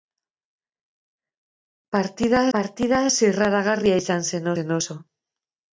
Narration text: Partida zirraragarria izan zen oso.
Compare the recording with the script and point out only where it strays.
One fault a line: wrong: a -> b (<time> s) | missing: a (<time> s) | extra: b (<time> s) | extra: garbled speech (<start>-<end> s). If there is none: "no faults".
extra: partida (2.6 s)
extra: zen (4.6 s)